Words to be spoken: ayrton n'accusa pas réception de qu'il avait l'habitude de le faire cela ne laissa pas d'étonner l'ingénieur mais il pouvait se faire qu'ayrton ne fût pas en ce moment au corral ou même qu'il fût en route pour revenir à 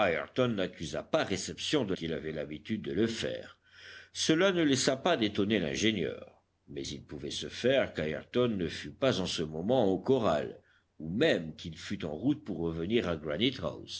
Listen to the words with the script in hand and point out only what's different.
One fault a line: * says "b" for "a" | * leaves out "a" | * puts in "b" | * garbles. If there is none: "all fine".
all fine